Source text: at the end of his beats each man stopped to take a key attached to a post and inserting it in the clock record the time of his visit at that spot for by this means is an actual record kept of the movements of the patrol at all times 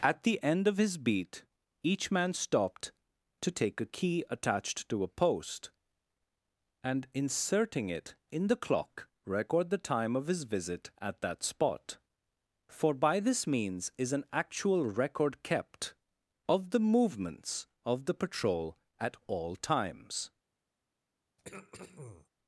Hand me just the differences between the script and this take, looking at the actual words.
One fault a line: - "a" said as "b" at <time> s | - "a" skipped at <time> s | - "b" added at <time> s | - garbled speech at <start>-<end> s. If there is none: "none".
- "beats" said as "beat" at 1.0 s